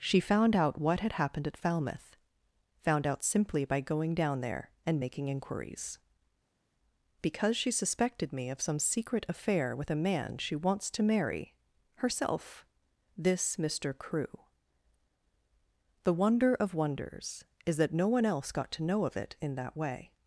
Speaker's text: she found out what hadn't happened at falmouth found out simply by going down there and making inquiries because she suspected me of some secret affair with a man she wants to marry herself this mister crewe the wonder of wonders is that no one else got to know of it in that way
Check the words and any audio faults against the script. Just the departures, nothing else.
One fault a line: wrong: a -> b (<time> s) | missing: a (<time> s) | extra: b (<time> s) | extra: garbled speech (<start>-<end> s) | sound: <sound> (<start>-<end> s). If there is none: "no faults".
wrong: hadn't -> had (1.0 s)